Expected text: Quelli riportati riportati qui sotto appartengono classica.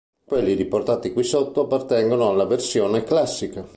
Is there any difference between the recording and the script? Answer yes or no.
yes